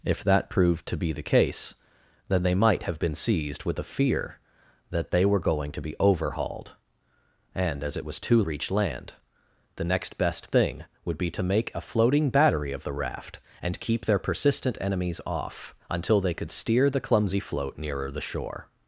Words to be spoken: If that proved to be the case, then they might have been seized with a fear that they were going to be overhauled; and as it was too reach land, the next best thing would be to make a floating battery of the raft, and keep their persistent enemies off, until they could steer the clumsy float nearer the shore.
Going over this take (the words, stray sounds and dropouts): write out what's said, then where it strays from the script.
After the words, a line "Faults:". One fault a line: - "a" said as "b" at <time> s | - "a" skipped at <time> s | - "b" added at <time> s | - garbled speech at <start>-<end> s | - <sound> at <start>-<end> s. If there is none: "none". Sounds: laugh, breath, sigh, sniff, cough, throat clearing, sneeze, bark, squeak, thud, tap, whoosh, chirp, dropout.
If that proved to be the case, then they might have been seized with a fear that they were going to be overhauled; and as it was too reach land, the next best thing would be to make a floating battery of the raft, and keep their persistent enemies off, until they could steer the clumsy float nearer the shore.
Faults:
none